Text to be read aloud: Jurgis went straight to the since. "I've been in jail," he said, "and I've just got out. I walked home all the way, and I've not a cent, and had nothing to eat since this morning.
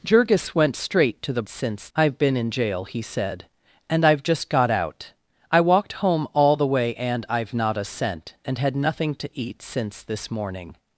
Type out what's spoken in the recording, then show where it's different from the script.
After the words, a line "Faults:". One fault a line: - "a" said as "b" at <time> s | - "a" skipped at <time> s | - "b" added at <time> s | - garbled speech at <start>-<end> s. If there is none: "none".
Jurgis went straight to the since. "I've been in jail," he said, "and I've just got out. I walked home all the way, and I've not a cent, and had nothing to eat since this morning.
Faults:
none